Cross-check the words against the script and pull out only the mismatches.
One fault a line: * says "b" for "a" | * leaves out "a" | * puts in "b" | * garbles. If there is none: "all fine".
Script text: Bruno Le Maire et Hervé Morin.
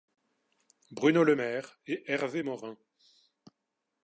all fine